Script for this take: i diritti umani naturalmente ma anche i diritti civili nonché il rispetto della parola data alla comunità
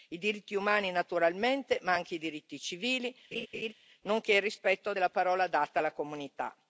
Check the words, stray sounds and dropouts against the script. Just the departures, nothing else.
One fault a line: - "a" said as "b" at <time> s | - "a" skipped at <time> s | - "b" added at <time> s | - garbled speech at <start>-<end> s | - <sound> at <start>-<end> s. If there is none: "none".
- laugh at 3.3-3.7 s